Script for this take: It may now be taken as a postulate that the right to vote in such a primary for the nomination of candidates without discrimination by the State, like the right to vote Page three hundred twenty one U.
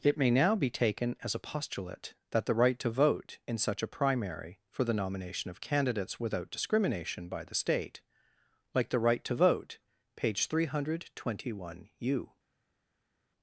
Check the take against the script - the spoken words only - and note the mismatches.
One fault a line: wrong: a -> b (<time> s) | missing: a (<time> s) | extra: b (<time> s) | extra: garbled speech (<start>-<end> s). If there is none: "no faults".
no faults